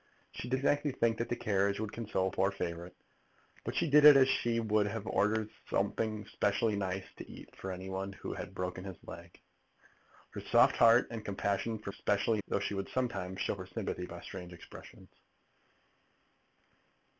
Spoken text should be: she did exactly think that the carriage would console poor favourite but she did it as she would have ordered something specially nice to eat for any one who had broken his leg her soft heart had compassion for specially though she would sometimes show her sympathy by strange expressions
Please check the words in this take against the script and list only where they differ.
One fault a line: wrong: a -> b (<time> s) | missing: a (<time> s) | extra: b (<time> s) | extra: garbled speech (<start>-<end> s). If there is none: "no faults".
no faults